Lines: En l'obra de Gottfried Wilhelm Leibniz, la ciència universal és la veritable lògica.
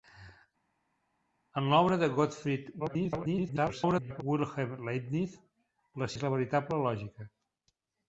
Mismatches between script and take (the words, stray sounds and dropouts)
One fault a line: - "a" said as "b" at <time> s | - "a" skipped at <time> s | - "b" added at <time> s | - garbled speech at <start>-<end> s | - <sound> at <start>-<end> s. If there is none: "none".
- garbled speech at 2.8-4.2 s
- "ciència universal" skipped at 6.1 s